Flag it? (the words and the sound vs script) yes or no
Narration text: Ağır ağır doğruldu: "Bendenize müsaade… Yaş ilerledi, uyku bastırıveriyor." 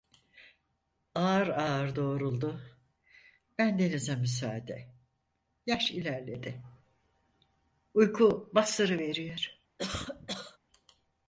yes